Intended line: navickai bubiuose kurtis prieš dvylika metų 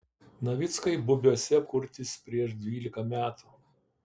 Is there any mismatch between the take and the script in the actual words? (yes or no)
no